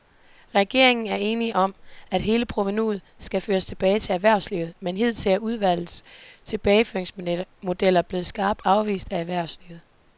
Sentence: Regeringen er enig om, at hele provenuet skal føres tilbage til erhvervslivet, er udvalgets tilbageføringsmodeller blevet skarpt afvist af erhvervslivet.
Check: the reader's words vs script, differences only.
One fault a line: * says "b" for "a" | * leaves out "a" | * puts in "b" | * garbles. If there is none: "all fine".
* puts in "men hidtil"